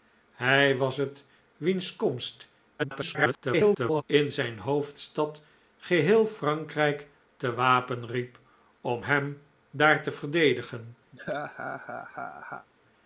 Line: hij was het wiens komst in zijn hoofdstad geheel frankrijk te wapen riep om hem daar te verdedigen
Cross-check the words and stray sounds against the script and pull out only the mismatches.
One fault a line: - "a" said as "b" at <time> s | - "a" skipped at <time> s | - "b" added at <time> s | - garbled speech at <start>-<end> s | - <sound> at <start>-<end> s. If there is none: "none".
- garbled speech at 2.8-4.0 s
- laugh at 11.1-12.7 s